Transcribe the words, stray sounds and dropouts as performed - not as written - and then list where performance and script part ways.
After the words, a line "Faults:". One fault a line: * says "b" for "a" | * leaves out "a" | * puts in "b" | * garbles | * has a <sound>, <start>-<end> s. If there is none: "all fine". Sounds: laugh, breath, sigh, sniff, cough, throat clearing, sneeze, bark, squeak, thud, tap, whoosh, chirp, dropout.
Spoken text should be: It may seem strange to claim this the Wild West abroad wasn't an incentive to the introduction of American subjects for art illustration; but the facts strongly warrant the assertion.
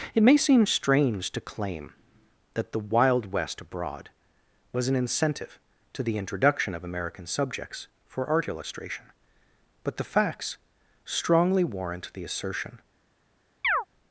It may seem strange to claim that the Wild West abroad was an incentive to the introduction of American subjects for art illustration; but the facts strongly warrant the assertion.
Faults:
* says "that" for "this"
* says "was" for "wasn't"
* has a chirp, 13.6-13.9 s